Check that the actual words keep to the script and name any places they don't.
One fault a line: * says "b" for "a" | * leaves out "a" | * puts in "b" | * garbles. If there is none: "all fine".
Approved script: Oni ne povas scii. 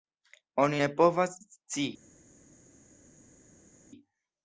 all fine